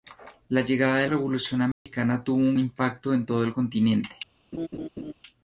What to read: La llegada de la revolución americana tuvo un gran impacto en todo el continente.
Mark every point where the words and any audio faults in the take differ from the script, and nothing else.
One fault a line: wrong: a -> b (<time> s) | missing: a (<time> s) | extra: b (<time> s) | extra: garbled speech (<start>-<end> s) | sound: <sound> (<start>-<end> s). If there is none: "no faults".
missing: la (1.1 s)
sound: dropout (1.7-1.9 s)
missing: gran (2.6 s)
sound: laugh (4.5-5.1 s)